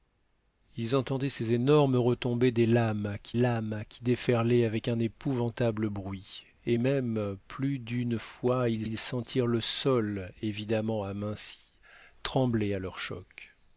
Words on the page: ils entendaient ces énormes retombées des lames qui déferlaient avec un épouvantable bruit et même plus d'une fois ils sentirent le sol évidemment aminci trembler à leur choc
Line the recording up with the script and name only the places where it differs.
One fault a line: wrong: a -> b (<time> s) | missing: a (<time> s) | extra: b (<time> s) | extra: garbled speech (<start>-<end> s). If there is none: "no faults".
extra: lames qui (3.3 s)
extra: ils (8.8 s)